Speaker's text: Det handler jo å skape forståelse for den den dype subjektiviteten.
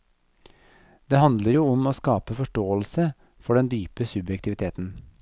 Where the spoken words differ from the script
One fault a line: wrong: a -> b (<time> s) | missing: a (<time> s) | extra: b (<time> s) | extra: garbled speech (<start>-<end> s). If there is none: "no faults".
extra: om (1.7 s)
missing: den (3.7 s)